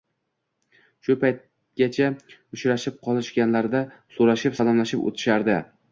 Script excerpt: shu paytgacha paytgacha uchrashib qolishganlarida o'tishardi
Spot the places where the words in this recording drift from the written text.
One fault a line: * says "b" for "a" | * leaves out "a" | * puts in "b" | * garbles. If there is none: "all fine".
* leaves out "paytgacha"
* puts in "so'rashib salomlashib"